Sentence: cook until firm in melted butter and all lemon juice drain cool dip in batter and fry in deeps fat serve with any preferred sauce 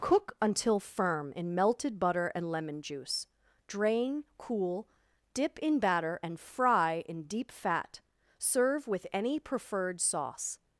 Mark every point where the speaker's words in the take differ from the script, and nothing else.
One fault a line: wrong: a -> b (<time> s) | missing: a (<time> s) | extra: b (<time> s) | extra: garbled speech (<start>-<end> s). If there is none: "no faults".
missing: all (2.5 s)
wrong: deeps -> deep (7.2 s)